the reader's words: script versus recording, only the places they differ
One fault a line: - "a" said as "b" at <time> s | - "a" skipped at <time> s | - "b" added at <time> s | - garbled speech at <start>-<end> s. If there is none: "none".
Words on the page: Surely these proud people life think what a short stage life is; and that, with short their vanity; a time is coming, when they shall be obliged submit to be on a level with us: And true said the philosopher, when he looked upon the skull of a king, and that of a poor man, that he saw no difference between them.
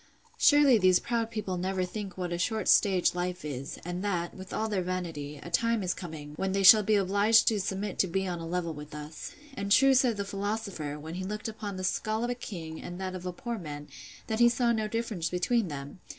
- "life" said as "never" at 1.6 s
- "short" said as "all" at 4.5 s
- "to" added at 7.5 s